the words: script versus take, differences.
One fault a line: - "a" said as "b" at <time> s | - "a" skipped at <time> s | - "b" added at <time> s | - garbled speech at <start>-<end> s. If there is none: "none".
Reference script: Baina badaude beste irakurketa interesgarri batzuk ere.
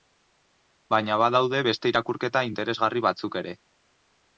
none